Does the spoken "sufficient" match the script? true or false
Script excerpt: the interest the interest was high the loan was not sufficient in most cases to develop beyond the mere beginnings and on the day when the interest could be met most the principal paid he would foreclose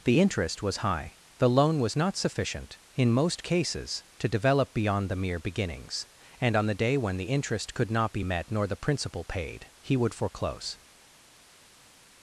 true